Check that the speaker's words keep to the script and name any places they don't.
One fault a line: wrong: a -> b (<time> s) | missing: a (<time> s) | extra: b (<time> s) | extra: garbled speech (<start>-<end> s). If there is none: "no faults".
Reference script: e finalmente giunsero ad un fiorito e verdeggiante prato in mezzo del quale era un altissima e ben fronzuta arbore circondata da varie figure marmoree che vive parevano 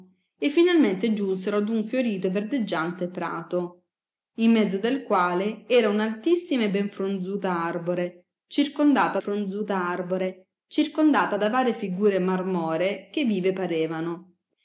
extra: fronzuta arbore circondata (9.2 s)